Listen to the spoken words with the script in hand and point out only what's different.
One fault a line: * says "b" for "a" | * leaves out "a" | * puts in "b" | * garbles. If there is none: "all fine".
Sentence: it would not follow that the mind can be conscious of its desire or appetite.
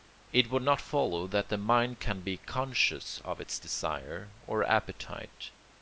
all fine